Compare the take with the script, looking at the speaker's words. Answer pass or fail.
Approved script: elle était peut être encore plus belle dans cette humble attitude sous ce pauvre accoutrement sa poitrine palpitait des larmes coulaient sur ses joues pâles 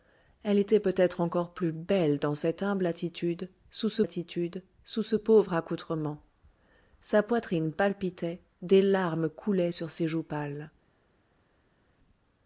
fail